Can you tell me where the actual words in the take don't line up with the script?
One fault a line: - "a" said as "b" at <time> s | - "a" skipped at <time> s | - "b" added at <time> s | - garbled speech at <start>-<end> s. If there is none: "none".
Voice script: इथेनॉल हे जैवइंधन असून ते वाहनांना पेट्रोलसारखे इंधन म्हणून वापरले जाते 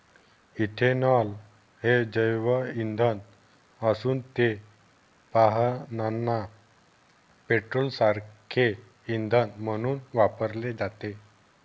none